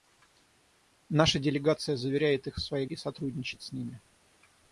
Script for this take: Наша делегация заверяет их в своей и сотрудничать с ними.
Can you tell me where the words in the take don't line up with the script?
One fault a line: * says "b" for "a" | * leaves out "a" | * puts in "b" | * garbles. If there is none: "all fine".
all fine